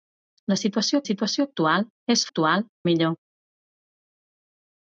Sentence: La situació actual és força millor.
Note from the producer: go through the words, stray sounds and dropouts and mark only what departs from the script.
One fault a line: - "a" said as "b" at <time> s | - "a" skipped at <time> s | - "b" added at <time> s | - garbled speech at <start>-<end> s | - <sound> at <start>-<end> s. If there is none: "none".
- "situació" added at 1.1 s
- "força" said as "actual" at 2.3 s